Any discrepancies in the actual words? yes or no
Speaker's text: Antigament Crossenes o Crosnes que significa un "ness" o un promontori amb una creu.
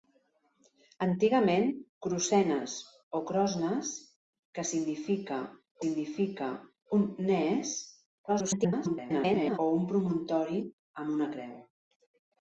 yes